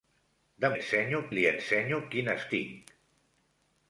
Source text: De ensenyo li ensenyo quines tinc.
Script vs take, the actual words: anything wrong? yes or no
no